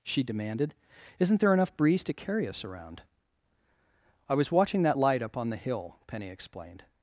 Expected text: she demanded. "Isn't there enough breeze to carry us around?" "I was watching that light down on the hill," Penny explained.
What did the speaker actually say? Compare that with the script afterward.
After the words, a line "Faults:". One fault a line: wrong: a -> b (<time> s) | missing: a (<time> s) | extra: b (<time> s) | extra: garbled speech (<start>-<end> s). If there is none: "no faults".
she demanded. "Isn't there enough breeze to carry us around?" "I was watching that light up on the hill," Penny explained.
Faults:
wrong: down -> up (5.2 s)